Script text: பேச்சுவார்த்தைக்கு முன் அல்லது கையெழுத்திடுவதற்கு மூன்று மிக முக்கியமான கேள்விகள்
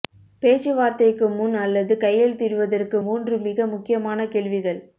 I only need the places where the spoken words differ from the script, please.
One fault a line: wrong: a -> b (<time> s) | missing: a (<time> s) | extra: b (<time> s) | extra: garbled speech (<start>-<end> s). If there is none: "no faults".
no faults